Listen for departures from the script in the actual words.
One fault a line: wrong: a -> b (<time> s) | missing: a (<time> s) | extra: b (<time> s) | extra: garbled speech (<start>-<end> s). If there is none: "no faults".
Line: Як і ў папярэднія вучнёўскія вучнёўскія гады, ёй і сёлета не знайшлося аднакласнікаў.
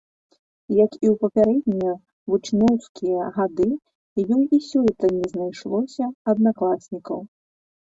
missing: вучнёўскія (3.3 s)